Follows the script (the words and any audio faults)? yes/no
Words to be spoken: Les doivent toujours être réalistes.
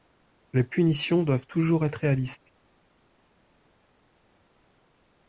no